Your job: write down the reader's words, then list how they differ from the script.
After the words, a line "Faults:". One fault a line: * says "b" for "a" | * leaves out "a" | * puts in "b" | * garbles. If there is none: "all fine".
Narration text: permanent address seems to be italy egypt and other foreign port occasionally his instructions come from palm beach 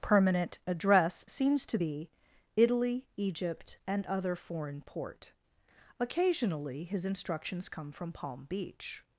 permanent address seems to be italy egypt and other foreign port occasionally his instructions come from palm beach
Faults:
all fine